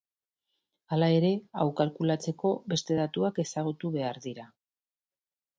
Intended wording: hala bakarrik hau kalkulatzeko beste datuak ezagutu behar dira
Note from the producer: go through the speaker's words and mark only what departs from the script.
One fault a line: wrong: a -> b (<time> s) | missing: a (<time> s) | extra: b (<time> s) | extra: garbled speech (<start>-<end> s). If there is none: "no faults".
wrong: bakarrik -> ere (1.2 s)